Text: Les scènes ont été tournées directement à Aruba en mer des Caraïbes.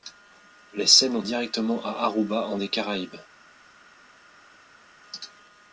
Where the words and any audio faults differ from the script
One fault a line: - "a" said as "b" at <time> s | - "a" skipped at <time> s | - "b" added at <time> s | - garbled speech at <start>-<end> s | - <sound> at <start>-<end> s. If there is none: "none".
- "été tournées" skipped at 1.2 s
- "mer" skipped at 2.6 s